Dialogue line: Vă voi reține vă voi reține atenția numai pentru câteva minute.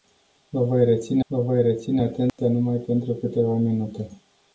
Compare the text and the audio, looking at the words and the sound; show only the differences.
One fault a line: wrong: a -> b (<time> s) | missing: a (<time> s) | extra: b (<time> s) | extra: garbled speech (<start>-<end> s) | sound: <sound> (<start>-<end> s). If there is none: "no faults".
sound: dropout (2.3-2.4 s)